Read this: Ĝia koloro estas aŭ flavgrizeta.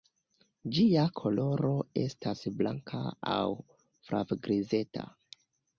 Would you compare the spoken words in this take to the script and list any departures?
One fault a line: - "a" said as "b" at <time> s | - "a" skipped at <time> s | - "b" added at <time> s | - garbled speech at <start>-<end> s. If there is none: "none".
- "blanka" added at 2.6 s